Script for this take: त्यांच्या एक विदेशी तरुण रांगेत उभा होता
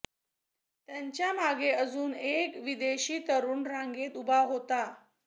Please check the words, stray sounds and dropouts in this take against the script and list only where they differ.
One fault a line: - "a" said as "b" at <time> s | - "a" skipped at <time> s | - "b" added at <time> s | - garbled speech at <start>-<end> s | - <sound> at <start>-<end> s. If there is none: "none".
- "मागे अजून" added at 1.3 s